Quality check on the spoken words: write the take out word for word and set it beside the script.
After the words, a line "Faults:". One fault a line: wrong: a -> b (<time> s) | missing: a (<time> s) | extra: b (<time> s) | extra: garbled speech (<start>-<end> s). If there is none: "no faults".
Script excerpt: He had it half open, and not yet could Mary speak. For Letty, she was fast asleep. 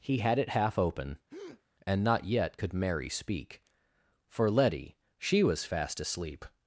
He had it half open, and not yet could Mary speak. For Letty, she was fast asleep.
Faults:
no faults